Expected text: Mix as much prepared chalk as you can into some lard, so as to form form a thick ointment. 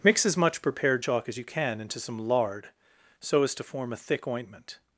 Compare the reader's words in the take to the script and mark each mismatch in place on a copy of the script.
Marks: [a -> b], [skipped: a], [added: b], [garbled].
Mix as much prepared chalk as you can into some lard, so as to form [skipped: form] a thick ointment.